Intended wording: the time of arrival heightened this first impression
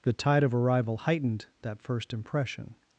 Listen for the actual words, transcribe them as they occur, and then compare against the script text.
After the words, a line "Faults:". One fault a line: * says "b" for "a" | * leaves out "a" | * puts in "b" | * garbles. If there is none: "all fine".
the tide of arrival heightened that first impression
Faults:
* says "tide" for "time"
* says "that" for "this"